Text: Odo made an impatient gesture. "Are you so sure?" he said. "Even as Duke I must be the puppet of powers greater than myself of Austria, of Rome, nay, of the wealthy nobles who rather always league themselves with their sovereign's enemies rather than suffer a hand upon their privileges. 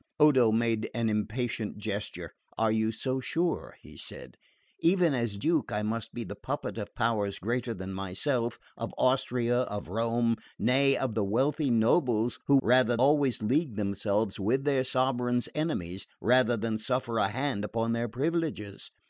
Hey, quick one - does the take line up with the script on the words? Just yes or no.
yes